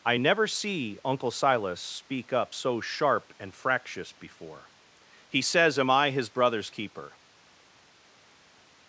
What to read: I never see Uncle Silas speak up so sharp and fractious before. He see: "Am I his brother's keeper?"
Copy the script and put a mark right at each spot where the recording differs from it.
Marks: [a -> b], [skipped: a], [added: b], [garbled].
I never see Uncle Silas speak up so sharp and fractious before. He [see: -> says] "Am I his brother's keeper?"